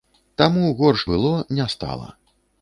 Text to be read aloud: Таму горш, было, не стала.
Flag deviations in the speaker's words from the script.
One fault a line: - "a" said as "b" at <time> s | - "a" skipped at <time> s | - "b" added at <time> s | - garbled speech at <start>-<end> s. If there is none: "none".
none